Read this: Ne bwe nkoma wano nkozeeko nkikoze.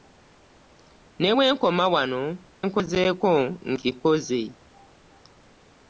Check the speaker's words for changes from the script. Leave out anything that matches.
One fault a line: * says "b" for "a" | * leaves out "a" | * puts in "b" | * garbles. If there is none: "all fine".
all fine